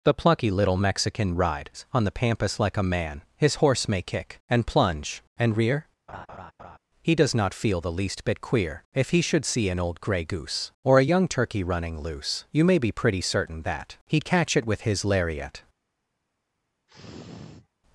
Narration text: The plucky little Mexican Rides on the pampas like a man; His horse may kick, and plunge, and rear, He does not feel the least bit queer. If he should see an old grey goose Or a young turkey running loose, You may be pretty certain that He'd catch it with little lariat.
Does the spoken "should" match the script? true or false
true